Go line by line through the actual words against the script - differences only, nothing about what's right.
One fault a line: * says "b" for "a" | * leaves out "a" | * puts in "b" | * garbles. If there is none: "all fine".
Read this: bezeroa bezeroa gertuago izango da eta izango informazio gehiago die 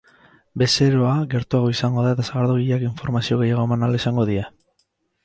* leaves out "bezeroa"
* says "sagardogileak" for "izango"
* puts in "eman ahal izango"